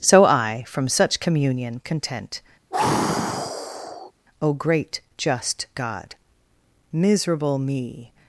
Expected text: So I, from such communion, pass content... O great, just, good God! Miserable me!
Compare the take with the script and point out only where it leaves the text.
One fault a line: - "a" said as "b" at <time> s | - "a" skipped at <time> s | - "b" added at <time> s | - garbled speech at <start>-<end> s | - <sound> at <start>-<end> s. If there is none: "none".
- "pass" skipped at 1.8 s
- sigh at 2.7-4.1 s
- "good" skipped at 5.7 s